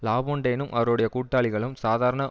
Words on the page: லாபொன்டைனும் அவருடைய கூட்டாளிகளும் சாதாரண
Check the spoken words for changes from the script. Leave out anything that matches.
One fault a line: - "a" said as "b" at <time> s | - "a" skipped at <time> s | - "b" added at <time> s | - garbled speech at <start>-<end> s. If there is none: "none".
none